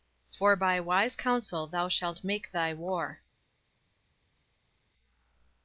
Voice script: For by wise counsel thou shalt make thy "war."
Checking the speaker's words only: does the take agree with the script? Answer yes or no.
yes